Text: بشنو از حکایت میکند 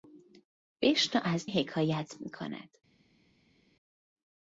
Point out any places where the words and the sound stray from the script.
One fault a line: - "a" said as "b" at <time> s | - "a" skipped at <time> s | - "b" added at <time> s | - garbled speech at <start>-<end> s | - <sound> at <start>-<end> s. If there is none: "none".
none